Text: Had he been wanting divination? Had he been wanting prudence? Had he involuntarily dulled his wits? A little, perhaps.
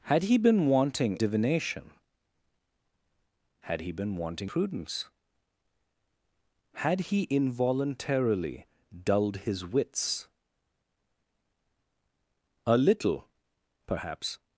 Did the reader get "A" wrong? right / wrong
right